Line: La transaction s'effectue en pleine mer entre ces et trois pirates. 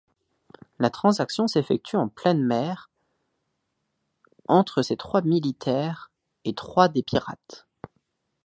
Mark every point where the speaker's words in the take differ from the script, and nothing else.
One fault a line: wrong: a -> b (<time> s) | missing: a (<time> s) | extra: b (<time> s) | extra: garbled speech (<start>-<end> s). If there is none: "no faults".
extra: trois militaires (4.9 s)
extra: des (6.9 s)